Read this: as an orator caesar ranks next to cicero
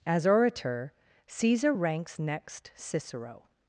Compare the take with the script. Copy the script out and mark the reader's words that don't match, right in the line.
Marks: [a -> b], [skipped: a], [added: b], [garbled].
as [skipped: an] orator caesar ranks next [skipped: to] cicero